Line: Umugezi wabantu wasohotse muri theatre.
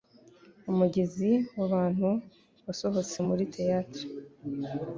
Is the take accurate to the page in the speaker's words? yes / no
yes